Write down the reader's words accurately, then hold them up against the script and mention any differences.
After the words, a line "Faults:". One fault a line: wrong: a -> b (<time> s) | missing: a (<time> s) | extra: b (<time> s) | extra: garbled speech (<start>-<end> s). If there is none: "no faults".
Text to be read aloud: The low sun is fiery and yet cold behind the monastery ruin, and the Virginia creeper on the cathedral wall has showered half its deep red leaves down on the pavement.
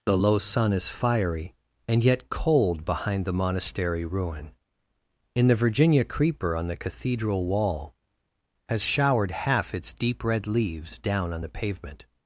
The low sun is fiery and yet cold behind the monastery ruin, in the Virginia creeper on the cathedral wall has showered half its deep red leaves down on the pavement.
Faults:
wrong: and -> in (5.3 s)